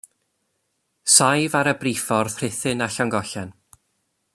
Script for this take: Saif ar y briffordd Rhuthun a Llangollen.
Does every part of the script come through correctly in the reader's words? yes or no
yes